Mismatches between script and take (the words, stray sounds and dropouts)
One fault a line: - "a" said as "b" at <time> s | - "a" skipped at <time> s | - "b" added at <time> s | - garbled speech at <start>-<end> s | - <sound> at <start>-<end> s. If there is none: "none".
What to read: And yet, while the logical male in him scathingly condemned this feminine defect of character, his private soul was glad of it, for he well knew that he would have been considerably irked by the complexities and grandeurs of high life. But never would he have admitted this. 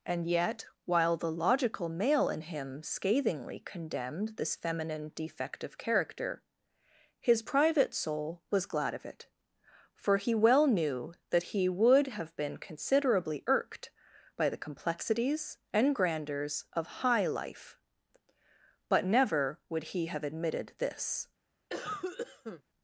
- cough at 21.7-22.6 s